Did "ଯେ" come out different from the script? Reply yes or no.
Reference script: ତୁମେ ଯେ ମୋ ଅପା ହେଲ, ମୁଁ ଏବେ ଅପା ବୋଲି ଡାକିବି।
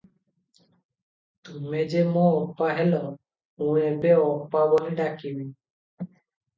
no